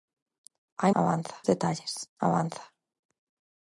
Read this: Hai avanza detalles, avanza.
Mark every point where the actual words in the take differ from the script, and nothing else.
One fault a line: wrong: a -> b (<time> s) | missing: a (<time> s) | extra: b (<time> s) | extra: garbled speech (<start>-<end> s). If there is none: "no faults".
no faults